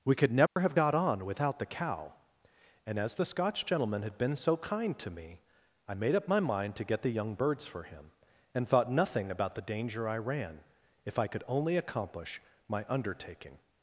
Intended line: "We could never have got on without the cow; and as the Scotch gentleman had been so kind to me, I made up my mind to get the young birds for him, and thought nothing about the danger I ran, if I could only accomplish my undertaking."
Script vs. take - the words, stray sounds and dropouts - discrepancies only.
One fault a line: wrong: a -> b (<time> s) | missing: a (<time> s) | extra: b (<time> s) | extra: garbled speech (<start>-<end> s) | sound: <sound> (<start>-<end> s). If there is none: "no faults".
sound: dropout (0.5-0.6 s)